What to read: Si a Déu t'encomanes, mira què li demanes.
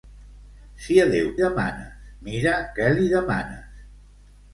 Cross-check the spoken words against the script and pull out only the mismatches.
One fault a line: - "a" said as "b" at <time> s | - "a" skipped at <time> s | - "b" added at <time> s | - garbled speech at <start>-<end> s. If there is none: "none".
- "t'encomanes" said as "demanes" at 1.4 s